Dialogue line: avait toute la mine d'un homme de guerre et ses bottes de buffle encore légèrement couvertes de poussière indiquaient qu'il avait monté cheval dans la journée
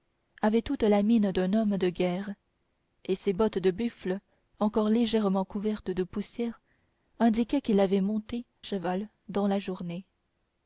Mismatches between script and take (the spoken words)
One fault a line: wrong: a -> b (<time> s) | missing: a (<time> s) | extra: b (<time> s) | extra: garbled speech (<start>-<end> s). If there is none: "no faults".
no faults